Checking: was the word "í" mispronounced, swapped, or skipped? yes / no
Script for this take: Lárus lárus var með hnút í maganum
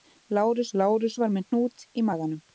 no